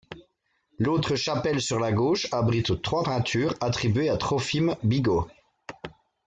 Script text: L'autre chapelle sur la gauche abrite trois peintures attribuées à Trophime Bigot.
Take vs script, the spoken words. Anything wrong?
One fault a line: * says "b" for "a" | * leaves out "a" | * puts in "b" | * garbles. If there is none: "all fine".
all fine